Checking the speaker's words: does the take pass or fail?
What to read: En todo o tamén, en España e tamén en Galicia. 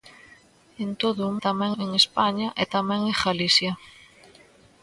pass